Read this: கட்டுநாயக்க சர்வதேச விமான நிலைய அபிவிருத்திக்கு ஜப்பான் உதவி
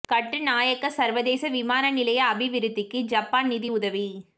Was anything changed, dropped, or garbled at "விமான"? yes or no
no